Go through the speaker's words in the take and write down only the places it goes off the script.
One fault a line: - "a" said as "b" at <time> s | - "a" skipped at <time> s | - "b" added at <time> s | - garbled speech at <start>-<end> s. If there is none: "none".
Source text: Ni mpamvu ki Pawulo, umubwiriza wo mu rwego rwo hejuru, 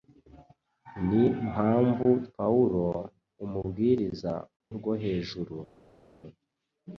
- "ki" skipped at 2.1 s
- "wo mu rwego" skipped at 4.3 s